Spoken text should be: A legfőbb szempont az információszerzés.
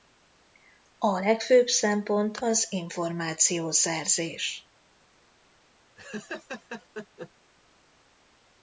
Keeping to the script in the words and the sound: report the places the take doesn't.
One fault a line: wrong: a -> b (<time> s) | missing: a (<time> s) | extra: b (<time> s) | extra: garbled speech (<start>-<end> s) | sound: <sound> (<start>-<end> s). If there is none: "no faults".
sound: laugh (6.0-7.3 s)